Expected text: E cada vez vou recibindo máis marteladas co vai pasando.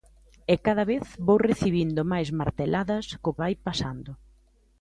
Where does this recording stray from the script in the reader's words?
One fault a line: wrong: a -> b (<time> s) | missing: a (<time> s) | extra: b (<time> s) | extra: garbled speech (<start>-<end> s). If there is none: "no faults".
no faults